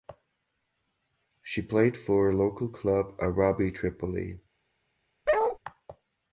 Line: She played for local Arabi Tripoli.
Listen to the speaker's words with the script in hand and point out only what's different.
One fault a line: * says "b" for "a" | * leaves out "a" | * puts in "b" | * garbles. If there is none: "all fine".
* puts in "club"